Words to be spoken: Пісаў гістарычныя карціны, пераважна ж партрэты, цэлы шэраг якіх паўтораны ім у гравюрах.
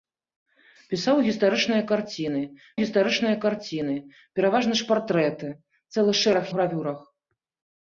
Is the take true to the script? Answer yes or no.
no